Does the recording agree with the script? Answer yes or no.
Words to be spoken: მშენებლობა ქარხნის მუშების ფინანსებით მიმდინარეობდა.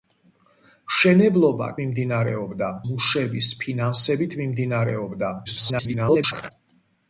no